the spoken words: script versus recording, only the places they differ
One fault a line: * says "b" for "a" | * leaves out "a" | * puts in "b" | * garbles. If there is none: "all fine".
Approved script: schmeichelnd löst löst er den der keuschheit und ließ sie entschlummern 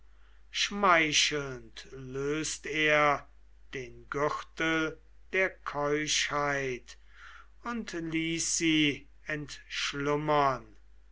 * leaves out "löst"
* puts in "gürtel"